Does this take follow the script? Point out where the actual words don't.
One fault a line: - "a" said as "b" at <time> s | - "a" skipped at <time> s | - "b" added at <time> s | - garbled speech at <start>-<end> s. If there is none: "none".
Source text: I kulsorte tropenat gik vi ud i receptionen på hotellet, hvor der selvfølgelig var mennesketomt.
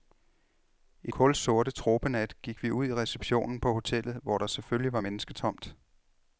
none